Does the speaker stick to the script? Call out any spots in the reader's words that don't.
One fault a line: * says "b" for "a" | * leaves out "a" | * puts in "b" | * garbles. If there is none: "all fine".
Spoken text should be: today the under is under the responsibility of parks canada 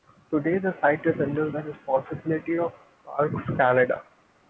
* says "site" for "under"